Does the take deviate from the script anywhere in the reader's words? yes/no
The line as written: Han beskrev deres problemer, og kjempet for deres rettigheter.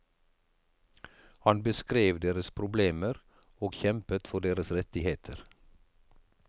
no